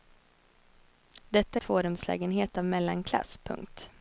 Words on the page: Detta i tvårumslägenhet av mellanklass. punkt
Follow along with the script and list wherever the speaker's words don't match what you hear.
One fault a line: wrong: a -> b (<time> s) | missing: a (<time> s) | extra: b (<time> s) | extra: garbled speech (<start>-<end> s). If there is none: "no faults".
no faults